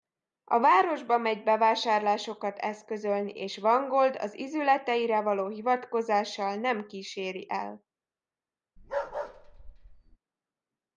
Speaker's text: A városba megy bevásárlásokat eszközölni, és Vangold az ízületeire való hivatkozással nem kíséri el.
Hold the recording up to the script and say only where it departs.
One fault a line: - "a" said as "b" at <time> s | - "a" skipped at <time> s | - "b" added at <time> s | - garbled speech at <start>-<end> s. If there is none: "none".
none